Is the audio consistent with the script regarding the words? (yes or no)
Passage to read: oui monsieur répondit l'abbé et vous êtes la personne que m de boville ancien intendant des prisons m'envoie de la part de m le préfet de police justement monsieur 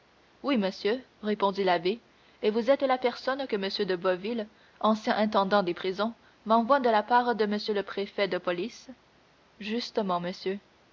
yes